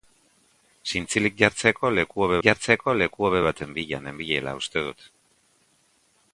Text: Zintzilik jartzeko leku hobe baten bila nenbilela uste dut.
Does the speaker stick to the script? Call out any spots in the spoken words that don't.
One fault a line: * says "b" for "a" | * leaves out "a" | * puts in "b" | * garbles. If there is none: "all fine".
* puts in "jartzeko leku hobe"